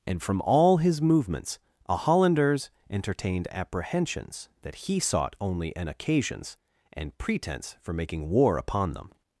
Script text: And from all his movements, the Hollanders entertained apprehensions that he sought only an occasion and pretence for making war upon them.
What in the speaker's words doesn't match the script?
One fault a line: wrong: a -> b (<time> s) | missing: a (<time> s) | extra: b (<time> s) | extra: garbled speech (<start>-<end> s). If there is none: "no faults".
wrong: the -> a (1.9 s)
wrong: occasion -> occasions (5.9 s)